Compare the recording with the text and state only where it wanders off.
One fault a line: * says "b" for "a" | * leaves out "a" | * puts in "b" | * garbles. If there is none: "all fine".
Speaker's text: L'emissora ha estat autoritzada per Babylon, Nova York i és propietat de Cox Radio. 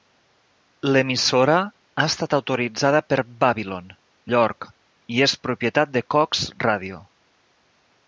* leaves out "Nova"